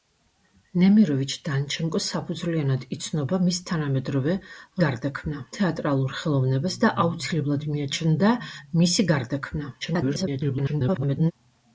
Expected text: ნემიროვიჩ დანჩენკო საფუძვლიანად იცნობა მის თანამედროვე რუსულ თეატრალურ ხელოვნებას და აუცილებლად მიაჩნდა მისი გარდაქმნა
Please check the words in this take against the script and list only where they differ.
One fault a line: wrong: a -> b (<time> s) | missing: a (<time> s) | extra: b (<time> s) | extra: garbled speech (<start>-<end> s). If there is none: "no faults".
wrong: რუსულ -> გარდაქმნა (4.9 s)
extra: garbled speech (9.8-11.3 s)